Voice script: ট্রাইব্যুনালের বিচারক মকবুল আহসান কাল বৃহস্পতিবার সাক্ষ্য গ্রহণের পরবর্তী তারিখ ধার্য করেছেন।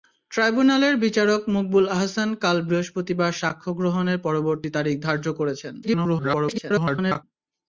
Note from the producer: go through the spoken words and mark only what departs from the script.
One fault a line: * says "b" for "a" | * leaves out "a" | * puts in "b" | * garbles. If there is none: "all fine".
* garbles